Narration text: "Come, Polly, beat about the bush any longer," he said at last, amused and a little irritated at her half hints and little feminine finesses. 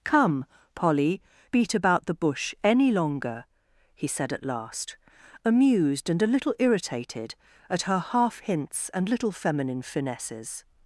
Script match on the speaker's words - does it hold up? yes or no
yes